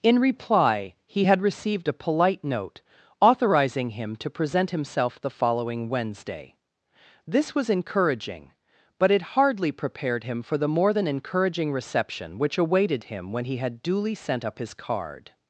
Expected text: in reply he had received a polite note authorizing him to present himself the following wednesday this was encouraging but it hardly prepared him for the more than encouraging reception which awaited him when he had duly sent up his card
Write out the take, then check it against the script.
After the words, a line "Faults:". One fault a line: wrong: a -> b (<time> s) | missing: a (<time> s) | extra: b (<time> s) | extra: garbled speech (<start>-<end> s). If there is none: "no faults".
in reply he had received a polite note authorizing him to present himself the following wednesday this was encouraging but it hardly prepared him for the more than encouraging reception which awaited him when he had duly sent up his card
Faults:
no faults